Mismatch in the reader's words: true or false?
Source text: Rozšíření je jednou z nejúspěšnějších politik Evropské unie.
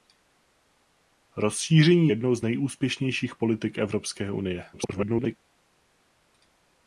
true